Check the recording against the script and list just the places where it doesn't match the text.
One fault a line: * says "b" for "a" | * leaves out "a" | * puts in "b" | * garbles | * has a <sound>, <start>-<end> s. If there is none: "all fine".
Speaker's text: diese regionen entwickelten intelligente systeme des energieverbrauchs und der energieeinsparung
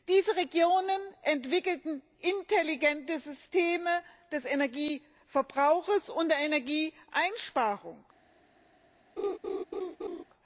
* has a laugh, 9.2-10.2 s